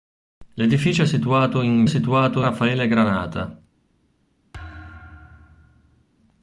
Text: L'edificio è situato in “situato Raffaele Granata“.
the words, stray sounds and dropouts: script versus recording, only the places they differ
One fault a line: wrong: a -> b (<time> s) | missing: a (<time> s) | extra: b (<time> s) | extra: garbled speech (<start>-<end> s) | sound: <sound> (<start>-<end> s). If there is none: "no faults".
sound: thud (4.5-6.0 s)